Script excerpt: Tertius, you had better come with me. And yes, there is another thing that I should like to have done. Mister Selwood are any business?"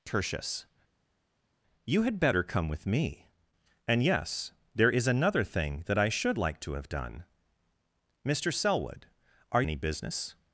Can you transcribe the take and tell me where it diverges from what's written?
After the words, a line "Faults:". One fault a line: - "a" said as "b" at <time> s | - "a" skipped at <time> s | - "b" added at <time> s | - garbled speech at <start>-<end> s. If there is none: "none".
Tertius, you had better come with me. And yes, there is another thing that I should like to have done. Mister Selwood are any business?"
Faults:
none